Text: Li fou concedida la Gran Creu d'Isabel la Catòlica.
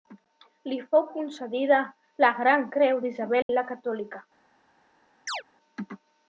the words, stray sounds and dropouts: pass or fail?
fail